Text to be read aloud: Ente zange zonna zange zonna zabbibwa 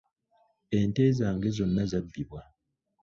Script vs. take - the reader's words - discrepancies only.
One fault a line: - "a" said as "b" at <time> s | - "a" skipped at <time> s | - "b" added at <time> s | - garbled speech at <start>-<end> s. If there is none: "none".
- "zange zonna" skipped at 1.8 s